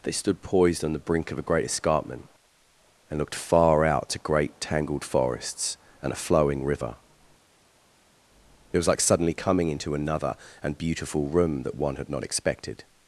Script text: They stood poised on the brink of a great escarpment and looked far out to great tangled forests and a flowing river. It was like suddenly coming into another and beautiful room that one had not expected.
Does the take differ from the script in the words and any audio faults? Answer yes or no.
no